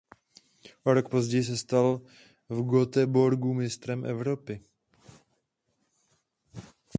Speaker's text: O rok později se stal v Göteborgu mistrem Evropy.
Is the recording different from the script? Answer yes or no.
no